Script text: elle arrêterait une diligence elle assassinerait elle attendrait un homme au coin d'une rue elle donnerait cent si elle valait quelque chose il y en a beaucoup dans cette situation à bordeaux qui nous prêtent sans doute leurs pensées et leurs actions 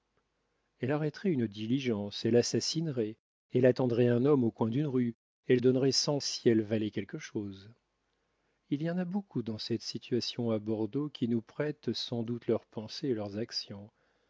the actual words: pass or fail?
pass